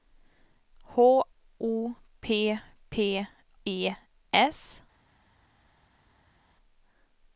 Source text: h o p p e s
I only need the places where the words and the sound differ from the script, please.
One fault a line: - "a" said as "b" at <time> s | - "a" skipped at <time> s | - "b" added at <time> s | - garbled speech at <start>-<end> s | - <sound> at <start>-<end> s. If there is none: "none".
none